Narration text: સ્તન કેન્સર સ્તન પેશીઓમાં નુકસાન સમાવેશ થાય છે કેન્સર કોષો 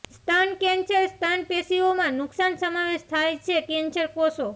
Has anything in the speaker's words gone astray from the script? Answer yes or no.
no